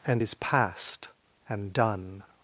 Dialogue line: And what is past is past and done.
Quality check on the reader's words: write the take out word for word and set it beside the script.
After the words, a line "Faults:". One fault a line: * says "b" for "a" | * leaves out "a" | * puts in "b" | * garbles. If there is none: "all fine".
And is past and done.
Faults:
* leaves out "what is past"